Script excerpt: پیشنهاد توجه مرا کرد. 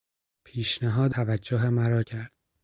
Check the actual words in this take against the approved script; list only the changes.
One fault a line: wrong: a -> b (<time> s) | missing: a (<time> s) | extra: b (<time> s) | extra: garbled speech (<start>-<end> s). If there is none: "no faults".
no faults